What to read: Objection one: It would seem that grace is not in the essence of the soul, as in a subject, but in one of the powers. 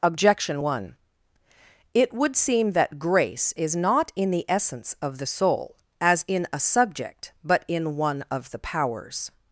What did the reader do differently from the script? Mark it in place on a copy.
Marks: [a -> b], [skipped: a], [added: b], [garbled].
Objection one: It would seem that grace is not in the essence of the soul, as in a subject, but in one of the powers.